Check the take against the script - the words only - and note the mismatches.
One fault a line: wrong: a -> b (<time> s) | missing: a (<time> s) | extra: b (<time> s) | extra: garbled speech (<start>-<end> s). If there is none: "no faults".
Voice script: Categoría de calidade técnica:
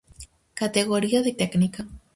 missing: calidade (1.3 s)